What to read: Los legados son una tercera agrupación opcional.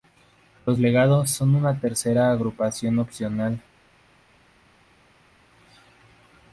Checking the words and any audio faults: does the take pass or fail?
pass